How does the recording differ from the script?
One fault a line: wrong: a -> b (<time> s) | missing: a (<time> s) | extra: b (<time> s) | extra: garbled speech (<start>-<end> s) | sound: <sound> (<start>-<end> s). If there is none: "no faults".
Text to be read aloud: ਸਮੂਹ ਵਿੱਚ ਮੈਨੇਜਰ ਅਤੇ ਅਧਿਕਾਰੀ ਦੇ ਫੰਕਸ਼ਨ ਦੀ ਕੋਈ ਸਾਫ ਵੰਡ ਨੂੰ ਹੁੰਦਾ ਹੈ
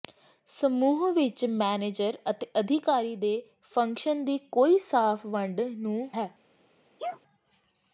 missing: ਹੁੰਦਾ (6.1 s)
sound: sneeze (7.0-7.2 s)